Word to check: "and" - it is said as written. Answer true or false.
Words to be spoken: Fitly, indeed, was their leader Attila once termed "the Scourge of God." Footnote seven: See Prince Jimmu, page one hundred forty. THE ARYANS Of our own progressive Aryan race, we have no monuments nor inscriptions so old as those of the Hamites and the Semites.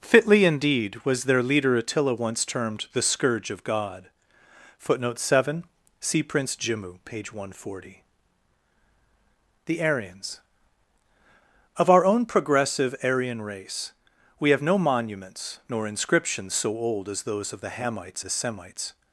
false